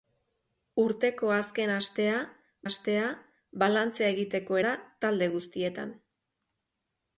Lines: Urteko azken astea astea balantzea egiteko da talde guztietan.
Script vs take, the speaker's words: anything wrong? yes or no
no